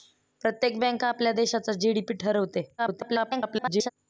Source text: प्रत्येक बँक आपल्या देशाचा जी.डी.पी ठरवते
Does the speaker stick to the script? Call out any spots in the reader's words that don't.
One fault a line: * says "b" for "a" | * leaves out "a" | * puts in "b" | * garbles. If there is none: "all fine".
* garbles